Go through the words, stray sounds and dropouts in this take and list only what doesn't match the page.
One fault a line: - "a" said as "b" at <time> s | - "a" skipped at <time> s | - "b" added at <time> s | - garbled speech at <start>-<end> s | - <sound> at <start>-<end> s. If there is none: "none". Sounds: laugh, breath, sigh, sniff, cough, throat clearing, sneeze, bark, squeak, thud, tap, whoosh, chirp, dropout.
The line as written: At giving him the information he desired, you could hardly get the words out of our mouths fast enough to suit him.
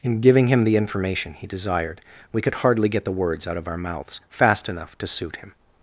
- "At" said as "In" at 0.0 s
- "you" said as "we" at 2.3 s